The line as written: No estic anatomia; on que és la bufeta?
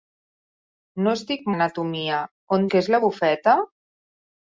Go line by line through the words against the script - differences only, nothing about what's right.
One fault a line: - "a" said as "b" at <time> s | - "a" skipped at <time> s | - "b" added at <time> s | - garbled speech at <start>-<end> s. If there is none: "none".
none